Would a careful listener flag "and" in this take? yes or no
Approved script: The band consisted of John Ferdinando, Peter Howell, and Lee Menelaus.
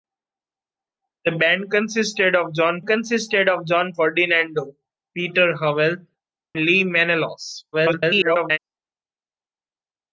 yes